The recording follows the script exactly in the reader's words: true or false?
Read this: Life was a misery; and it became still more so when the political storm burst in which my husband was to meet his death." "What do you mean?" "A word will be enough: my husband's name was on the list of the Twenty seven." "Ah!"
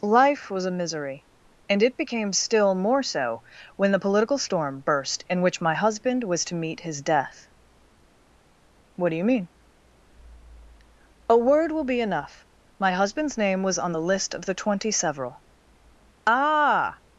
false